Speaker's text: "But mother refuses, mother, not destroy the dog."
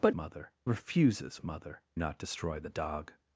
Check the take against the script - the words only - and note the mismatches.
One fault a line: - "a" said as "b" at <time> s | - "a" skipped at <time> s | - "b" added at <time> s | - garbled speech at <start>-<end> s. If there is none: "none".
none